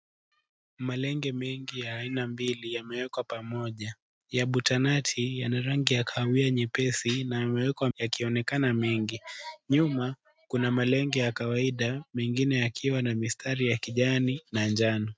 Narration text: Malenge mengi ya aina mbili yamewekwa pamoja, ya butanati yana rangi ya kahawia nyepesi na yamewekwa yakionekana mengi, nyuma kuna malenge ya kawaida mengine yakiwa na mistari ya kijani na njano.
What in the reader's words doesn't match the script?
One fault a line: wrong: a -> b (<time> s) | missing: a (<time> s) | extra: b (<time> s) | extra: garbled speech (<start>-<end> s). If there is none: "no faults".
no faults